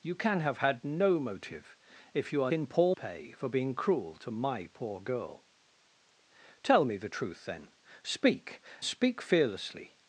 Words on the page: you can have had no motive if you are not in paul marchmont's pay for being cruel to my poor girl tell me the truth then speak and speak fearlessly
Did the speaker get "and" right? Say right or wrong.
wrong